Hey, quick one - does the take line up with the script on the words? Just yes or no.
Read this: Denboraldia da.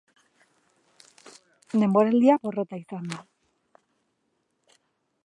no